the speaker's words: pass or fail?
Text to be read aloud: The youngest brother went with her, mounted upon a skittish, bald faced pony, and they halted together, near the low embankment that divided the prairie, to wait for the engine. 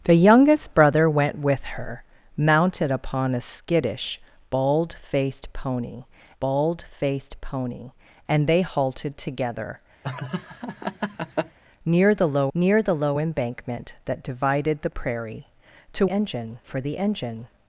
fail